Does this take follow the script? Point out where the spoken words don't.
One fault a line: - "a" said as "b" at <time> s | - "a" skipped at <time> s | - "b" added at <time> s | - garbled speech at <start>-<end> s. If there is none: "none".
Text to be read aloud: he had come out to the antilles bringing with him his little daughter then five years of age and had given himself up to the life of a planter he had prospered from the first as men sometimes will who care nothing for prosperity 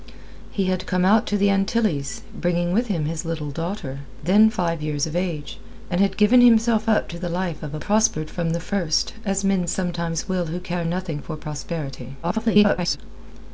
- "planter he had" skipped at 7.8 s
- garbled speech at 12.2-13.0 s